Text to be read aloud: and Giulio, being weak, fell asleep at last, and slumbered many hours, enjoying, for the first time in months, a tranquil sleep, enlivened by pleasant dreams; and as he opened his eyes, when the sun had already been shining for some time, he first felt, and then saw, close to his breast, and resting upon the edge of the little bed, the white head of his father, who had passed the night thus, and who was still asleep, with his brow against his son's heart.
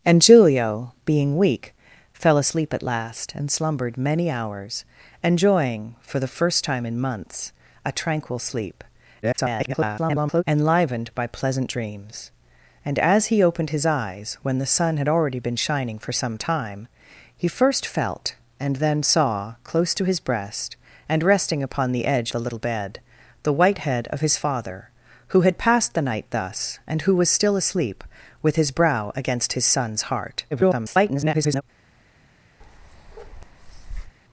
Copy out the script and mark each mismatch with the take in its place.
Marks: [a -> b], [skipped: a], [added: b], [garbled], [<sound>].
and Giulio, being weak, fell asleep at last, and slumbered many hours, enjoying, for the first time in months, a tranquil sleep, [garbled] enlivened by pleasant dreams; and as he opened his eyes, when the sun had already been shining for some time, he first felt, and then saw, close to his breast, and resting upon the edge [skipped: of] the little bed, the white head of his father, who had passed the night thus, and who was still asleep, with his brow against his son's heart. [garbled] [bark]